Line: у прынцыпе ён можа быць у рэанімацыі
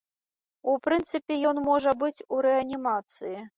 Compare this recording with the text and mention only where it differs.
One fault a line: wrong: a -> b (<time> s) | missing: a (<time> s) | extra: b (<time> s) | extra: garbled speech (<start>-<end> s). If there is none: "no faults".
no faults